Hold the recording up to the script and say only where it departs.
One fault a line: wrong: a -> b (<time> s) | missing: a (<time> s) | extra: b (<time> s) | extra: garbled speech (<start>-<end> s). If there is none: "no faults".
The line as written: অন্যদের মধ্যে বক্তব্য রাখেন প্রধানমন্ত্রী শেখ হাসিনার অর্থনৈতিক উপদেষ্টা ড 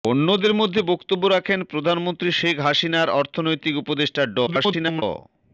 extra: garbled speech (4.5-5.0 s)